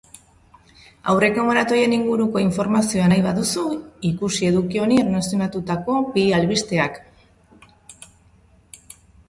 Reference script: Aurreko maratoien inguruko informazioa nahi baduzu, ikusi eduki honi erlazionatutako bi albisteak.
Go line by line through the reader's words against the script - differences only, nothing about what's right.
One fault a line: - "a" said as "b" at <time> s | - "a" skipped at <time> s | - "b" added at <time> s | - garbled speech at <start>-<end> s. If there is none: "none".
none